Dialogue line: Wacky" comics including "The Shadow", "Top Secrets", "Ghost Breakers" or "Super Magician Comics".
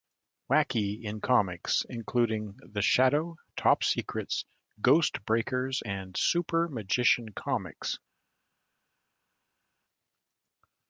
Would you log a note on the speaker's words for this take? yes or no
yes